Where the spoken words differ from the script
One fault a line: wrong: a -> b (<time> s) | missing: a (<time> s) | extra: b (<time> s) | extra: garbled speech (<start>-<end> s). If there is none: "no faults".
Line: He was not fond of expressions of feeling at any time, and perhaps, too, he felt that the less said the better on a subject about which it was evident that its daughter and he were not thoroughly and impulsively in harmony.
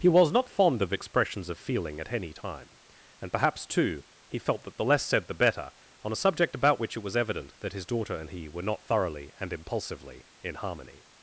wrong: its -> his (7.7 s)